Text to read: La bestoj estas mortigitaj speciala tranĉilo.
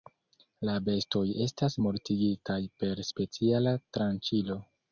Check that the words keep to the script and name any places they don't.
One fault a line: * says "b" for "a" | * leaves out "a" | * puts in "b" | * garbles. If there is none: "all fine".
* puts in "per"